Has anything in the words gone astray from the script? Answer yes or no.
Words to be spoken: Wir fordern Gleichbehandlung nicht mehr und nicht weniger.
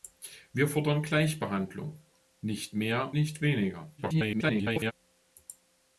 yes